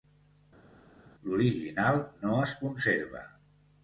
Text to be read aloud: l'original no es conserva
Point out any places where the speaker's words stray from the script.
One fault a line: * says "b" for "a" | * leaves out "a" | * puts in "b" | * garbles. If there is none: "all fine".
all fine